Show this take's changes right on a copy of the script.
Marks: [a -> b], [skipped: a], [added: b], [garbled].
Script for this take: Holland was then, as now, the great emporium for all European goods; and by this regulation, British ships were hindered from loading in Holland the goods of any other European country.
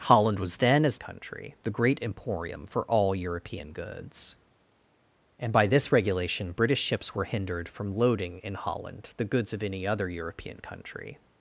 Holland was then, as [now, -> country] the great emporium for all European goods; and by this regulation, British ships were hindered from loading in Holland the goods of any other European country.